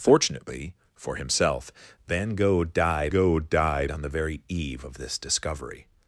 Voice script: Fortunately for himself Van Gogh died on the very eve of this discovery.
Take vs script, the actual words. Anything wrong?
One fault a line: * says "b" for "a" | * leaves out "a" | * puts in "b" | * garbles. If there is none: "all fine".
* puts in "Gogh died"